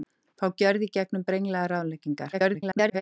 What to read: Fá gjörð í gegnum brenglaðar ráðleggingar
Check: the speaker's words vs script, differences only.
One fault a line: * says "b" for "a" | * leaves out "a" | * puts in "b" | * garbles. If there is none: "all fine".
* garbles